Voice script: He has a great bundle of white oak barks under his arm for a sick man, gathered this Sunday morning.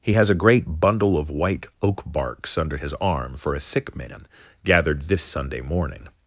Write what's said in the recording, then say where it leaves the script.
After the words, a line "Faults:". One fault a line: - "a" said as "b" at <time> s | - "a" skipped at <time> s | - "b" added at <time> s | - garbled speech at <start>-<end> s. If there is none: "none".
He has a great bundle of white oak barks under his arm for a sick man, gathered this Sunday morning.
Faults:
none